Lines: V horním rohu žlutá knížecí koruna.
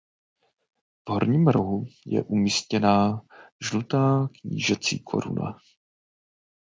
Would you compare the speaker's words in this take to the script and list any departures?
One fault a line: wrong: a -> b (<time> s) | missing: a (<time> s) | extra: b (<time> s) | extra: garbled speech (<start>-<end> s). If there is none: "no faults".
extra: je umístěná (2.0 s)